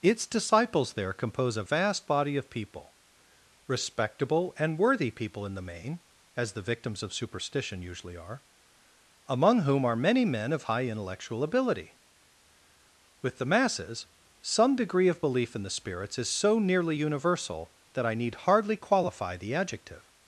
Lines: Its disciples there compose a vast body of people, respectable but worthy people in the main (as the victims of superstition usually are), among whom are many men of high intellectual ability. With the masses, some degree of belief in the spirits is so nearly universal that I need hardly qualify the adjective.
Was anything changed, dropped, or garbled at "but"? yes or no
yes